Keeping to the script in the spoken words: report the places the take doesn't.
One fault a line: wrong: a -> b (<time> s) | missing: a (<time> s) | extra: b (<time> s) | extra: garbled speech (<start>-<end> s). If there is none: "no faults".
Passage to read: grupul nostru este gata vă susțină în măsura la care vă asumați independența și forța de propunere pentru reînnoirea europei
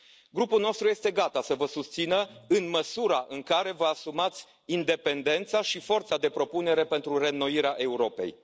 extra: să (1.4 s)
wrong: la -> în (3.3 s)